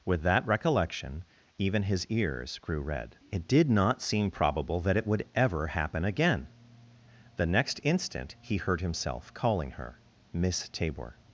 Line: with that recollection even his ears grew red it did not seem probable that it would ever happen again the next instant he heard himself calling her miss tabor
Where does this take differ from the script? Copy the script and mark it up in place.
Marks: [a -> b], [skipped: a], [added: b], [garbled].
with that recollection even his ears grew red it did not seem probable that it would ever happen again the next instant he heard himself calling her miss tabor